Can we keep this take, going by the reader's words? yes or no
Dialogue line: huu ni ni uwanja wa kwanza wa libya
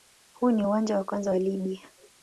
no